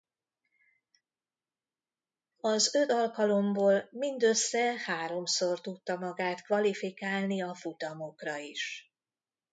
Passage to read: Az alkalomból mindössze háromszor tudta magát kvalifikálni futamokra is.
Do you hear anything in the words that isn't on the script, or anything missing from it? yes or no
yes